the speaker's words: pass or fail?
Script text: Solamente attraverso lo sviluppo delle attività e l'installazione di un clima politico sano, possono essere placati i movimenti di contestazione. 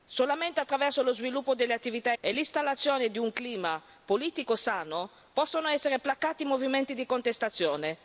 pass